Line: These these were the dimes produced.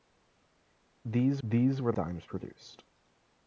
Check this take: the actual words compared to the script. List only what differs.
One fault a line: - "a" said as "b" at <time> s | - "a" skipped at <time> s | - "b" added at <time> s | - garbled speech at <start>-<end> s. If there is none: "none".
none